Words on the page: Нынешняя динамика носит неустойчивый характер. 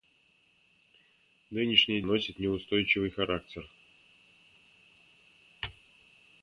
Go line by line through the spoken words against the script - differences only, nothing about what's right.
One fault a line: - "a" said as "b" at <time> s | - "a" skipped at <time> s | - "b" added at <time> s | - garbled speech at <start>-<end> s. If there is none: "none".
- "динамика" skipped at 2.0 s